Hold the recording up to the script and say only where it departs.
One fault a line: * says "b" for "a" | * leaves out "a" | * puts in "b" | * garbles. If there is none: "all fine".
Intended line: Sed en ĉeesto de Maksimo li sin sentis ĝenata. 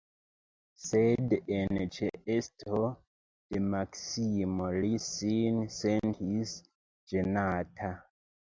all fine